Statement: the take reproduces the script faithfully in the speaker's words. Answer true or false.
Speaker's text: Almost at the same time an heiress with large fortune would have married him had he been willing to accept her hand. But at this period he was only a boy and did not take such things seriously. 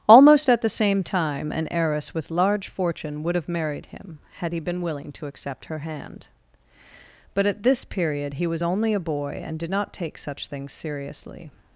true